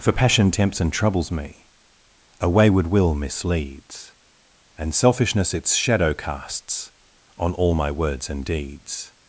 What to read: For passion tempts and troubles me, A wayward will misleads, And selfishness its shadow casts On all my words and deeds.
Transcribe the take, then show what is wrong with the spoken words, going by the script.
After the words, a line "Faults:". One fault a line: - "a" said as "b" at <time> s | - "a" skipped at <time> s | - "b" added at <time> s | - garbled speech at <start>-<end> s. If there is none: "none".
For passion tempts and troubles me, A wayward will misleads, And selfishness its shadow casts On all my words and deeds.
Faults:
none